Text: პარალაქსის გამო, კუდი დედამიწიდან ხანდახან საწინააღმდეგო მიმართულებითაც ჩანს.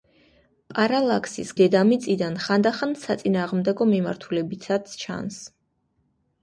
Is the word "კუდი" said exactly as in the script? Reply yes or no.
no